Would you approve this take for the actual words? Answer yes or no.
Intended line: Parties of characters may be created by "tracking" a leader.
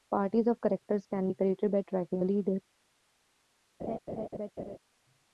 no